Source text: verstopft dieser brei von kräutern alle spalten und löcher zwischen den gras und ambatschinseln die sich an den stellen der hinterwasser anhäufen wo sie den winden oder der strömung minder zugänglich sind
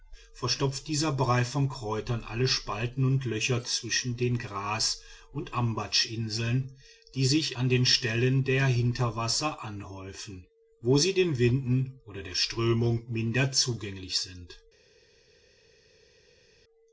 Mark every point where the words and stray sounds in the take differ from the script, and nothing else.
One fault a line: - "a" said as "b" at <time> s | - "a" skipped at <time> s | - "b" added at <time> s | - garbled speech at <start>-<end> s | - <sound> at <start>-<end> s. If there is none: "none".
none